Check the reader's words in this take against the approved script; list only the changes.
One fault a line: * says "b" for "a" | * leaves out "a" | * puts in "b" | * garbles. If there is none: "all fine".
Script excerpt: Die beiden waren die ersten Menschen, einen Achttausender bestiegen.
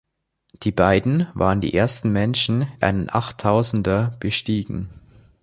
all fine